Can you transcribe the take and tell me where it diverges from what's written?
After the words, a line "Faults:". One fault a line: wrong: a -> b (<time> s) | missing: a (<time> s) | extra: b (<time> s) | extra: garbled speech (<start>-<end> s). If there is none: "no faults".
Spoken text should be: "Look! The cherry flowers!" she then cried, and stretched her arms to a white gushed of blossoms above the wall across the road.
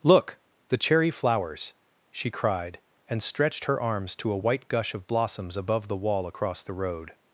"Look! The cherry flowers!" she cried, and stretched her arms to a white gush of blossoms above the wall across the road.
Faults:
missing: then (2.3 s)
wrong: gushed -> gush (4.7 s)